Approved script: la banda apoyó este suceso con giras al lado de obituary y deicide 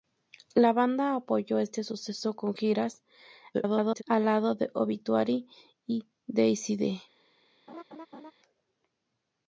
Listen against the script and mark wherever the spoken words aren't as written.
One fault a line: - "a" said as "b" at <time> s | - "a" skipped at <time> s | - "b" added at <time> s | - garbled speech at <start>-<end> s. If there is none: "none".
- garbled speech at 3.5-4.0 s